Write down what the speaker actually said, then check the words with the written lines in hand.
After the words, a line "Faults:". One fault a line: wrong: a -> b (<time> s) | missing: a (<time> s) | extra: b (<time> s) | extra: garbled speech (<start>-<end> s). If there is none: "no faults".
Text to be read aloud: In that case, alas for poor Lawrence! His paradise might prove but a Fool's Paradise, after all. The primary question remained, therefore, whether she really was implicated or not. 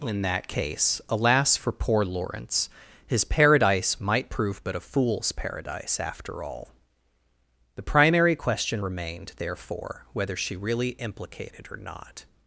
In that case, alas for poor Lawrence! His paradise might prove but a Fool's Paradise, after all. The primary question remained, therefore, whether she really implicated or not.
Faults:
missing: was (10.9 s)